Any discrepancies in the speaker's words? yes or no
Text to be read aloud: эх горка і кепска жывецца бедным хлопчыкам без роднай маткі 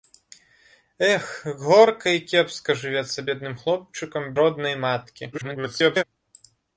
yes